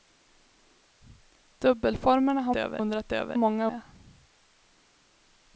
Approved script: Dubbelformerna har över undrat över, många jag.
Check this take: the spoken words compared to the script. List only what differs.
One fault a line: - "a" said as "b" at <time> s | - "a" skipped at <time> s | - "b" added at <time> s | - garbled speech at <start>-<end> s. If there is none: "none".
none